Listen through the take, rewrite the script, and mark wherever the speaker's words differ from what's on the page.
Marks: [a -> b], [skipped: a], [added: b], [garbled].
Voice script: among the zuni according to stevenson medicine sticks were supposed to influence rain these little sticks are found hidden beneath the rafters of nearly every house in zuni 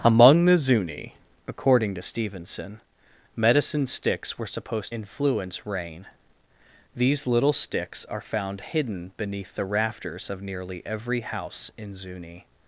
among the zuni according to stevenson medicine sticks were supposed [skipped: to] influence rain these little sticks are found hidden beneath the rafters of nearly every house in zuni